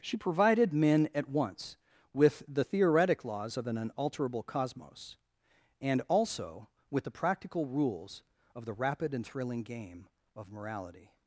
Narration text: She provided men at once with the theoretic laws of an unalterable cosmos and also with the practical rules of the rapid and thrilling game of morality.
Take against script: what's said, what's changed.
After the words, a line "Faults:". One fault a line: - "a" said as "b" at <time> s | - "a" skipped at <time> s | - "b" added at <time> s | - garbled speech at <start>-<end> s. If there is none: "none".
She provided men at once with the theoretic laws of an unalterable cosmos and also with the practical rules of the rapid and thrilling game of morality.
Faults:
none